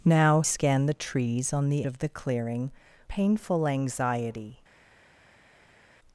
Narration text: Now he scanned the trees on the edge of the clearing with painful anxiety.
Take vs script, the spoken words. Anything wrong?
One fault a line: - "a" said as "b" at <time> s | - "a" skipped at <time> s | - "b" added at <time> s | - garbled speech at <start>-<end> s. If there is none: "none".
- "he" skipped at 0.4 s
- "edge" skipped at 1.9 s
- "with" skipped at 2.7 s